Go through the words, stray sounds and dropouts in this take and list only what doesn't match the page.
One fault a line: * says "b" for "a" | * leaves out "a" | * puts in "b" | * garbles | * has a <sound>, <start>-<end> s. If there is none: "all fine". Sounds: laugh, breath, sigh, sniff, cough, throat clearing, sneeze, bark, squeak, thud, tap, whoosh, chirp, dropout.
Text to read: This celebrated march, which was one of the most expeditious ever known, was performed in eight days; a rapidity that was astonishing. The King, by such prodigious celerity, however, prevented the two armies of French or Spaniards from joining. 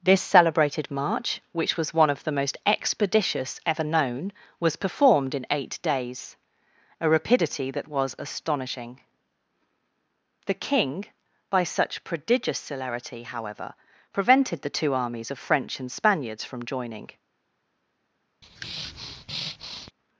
* says "and" for "or"
* has a breath, 18.4-19.9 s